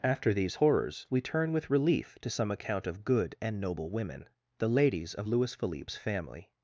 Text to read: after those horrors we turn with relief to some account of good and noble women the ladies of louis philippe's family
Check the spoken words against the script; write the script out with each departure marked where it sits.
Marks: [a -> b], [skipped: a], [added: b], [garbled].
after [those -> these] horrors we turn with relief to some account of good and noble women the ladies of louis philippe's family